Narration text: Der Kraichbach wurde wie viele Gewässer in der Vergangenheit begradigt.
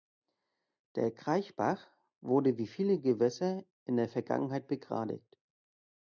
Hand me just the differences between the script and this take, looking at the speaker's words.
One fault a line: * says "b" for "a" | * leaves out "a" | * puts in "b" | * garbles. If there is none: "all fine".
all fine